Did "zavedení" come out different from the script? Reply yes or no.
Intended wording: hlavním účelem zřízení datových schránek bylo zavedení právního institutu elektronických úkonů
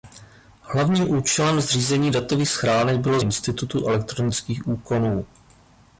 yes